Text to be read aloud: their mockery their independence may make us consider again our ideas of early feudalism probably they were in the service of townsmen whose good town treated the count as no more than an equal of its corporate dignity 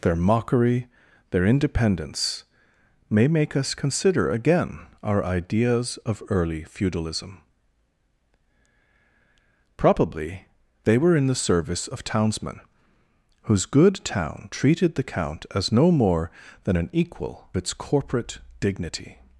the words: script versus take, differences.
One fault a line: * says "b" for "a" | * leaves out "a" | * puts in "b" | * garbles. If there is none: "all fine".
* leaves out "of"